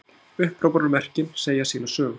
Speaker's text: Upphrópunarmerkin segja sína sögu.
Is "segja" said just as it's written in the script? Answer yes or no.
yes